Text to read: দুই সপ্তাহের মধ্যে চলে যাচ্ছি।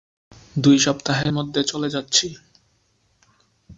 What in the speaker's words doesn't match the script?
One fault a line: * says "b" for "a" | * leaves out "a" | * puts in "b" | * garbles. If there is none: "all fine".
all fine